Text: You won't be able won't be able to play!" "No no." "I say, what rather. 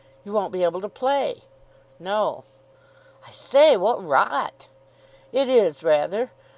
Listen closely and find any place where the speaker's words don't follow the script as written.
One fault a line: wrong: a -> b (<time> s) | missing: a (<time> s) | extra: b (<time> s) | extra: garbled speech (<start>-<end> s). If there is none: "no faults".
missing: won't be able (0.8 s)
missing: no (2.5 s)
extra: rot It is (4.0 s)